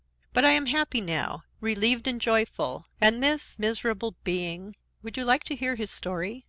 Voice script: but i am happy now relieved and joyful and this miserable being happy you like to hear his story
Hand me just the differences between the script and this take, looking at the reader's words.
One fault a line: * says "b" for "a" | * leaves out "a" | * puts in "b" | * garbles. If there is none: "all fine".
* says "would" for "happy"